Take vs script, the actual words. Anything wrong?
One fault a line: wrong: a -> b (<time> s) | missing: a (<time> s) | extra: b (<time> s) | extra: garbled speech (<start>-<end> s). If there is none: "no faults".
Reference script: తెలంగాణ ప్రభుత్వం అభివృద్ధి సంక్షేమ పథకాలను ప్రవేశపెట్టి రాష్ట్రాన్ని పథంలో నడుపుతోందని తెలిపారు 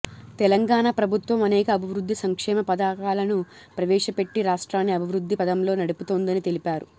extra: అనేక (1.4 s)
extra: అభివృద్ధి (4.9 s)